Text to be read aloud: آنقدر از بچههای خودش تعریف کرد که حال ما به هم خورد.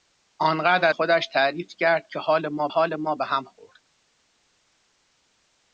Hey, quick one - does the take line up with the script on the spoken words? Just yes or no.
no